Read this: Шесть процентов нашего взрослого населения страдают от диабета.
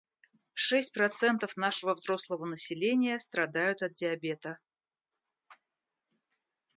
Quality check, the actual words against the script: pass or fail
pass